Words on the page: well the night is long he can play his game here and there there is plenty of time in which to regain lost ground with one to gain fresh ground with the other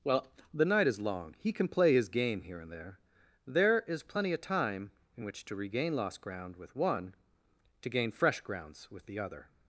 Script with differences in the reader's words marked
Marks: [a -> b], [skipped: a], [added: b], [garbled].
well the night is long he can play his game here and there there is plenty of time in which to regain lost ground with one to gain fresh [ground -> grounds] with the other